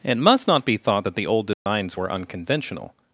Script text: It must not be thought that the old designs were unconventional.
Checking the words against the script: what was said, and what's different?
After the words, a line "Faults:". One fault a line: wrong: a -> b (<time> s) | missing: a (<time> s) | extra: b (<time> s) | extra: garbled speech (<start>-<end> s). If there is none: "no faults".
It must not be thought that the old designs were unconventional.
Faults:
no faults